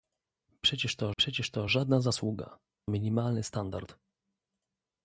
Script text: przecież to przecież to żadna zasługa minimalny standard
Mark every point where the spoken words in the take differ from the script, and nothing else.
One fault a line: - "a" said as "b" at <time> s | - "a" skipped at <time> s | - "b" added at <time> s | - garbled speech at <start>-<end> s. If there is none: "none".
none